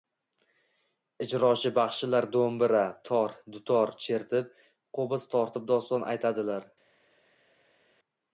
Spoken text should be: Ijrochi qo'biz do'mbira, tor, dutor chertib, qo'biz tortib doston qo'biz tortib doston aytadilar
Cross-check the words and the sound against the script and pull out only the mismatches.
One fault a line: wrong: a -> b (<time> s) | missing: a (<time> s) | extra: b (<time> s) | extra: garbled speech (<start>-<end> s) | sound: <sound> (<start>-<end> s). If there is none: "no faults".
wrong: qo'biz -> baxshilar (1.8 s)
missing: qo'biz tortib doston (6.1 s)